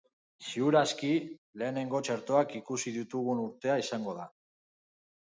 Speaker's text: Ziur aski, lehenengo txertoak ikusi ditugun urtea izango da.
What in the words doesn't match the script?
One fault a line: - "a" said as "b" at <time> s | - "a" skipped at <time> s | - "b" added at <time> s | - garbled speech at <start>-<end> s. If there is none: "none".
none